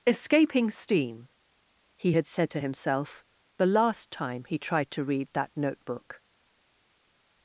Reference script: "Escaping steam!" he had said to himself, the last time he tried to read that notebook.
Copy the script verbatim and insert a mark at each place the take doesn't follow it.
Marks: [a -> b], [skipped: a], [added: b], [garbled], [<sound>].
"Escaping steam!" he had said to himself, the last time he tried to read that notebook.